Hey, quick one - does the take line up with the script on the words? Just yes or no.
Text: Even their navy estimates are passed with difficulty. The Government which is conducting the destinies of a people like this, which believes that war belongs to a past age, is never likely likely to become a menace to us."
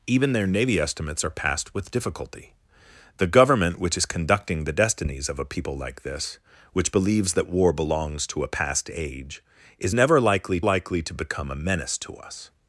yes